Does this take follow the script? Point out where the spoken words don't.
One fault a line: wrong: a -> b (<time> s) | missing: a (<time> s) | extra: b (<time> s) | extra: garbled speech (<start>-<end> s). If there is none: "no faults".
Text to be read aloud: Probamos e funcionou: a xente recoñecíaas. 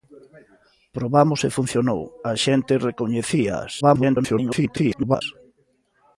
extra: garbled speech (3.8-5.2 s)